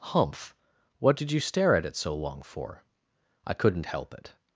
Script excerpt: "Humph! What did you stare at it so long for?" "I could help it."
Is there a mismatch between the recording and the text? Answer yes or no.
yes